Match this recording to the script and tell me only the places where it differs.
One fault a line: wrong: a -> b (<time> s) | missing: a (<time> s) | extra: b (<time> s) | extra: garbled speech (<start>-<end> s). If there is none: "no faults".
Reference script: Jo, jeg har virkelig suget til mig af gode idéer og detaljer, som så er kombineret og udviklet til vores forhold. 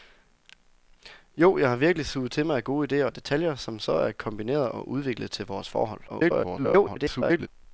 extra: garbled speech (6.1-7.5 s)